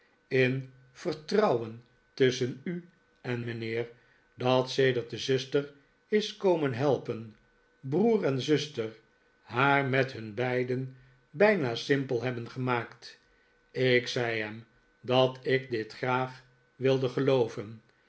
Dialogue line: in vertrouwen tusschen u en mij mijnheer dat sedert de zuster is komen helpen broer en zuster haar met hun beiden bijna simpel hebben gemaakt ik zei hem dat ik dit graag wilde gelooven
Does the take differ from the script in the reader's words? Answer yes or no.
yes